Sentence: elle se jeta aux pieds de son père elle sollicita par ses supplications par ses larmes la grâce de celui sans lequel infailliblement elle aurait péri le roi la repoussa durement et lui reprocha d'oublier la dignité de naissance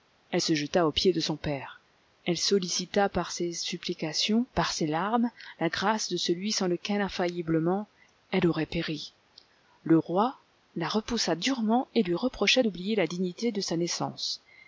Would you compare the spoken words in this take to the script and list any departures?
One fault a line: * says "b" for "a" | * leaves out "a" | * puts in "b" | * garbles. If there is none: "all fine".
* puts in "sa"